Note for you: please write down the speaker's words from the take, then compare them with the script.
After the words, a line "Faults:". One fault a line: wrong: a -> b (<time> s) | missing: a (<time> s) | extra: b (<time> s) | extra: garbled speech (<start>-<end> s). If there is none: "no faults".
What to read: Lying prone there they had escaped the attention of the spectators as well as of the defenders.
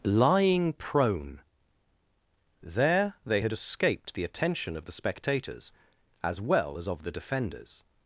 Lying prone there they had escaped the attention of the spectators as well as of the defenders.
Faults:
no faults